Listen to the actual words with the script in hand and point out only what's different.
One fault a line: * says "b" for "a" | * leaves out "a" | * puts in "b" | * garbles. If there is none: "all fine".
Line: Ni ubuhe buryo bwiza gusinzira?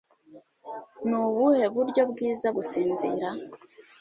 all fine